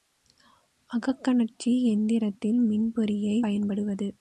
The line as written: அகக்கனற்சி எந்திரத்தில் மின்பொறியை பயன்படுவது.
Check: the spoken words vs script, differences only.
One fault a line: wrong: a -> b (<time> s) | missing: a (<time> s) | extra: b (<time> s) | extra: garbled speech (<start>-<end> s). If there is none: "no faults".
no faults